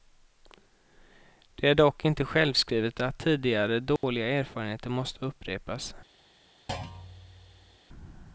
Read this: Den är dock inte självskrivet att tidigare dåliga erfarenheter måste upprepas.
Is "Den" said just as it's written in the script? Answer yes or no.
no